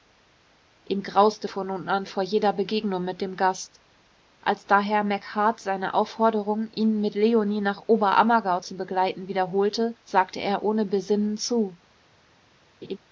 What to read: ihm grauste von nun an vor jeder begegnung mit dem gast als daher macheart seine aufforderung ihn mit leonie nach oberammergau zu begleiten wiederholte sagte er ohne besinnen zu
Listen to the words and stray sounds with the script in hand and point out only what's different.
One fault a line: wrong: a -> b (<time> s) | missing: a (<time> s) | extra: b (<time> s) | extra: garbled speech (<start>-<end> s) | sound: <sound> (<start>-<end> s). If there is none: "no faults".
sound: laugh (12.8-13.0 s)